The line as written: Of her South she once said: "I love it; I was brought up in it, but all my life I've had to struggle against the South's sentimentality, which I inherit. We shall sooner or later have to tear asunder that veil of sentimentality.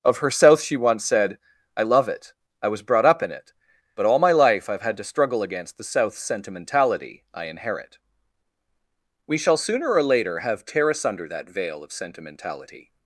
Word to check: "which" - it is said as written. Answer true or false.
false